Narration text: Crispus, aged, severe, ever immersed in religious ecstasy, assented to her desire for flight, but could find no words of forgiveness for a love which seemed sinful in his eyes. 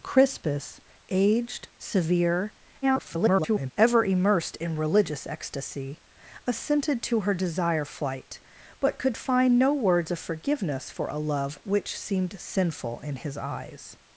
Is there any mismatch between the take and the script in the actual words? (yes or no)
yes